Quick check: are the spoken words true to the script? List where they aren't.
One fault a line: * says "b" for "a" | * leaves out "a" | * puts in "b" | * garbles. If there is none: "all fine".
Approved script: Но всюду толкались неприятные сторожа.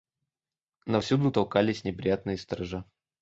all fine